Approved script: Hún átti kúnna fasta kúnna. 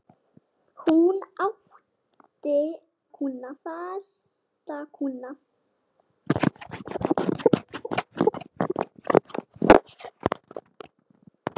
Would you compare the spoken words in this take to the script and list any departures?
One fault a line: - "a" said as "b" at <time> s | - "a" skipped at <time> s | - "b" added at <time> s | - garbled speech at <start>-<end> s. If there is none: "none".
none